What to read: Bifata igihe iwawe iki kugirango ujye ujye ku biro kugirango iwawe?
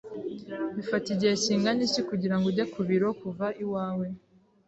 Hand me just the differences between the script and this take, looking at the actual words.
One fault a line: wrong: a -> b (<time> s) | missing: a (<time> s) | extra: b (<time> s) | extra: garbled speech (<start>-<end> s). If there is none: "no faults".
wrong: iwawe -> kingana (1.4 s)
missing: ujye (2.6 s)
wrong: kugirango -> kuva (3.2 s)